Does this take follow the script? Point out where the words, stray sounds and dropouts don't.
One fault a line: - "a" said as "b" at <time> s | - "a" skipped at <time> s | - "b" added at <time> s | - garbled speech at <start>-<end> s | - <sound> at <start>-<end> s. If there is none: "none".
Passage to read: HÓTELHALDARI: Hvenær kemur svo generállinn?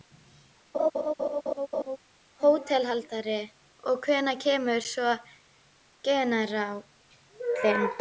- laugh at 0.7-2.0 s
- "Og" added at 3.9 s